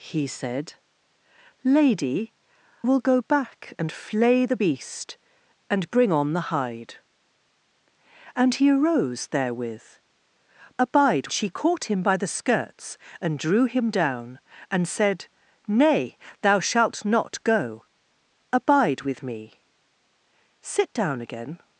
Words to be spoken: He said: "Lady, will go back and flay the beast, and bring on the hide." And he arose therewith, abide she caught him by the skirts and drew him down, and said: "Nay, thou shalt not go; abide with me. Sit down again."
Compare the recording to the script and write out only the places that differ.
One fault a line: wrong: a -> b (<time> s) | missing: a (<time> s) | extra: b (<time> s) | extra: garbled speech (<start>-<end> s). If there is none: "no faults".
no faults